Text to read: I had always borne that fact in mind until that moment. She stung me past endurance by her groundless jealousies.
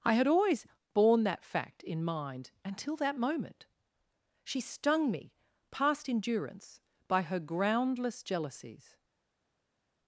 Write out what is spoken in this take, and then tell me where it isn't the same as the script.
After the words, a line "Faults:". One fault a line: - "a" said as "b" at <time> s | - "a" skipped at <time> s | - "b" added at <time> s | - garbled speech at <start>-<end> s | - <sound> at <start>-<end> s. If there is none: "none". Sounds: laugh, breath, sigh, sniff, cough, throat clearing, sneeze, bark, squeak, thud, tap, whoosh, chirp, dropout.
I had always borne that fact in mind until that moment. She stung me past endurance by her groundless jealousies.
Faults:
none